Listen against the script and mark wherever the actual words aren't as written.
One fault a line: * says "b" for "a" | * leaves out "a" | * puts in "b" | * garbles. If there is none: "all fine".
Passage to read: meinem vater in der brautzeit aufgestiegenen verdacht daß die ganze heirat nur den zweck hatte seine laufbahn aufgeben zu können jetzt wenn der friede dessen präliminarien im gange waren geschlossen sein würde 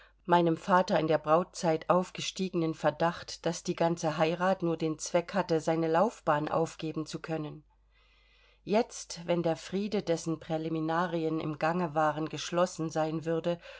all fine